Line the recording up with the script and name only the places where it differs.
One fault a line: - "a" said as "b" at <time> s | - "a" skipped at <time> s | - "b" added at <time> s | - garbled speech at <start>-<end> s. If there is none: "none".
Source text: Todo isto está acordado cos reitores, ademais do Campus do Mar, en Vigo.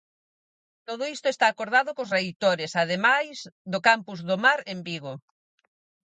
none